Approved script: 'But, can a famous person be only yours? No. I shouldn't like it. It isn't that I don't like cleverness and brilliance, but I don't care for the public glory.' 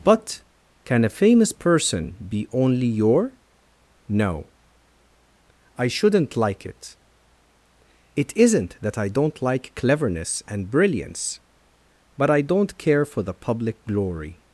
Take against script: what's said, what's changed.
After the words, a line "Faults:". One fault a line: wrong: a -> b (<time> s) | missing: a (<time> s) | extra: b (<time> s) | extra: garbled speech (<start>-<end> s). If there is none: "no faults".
'But, can a famous person be only your? No. I shouldn't like it. It isn't that I don't like cleverness and brilliance, but I don't care for the public glory.'
Faults:
wrong: yours -> your (2.9 s)